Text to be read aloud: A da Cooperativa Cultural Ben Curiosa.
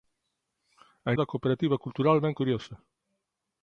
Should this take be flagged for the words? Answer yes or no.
no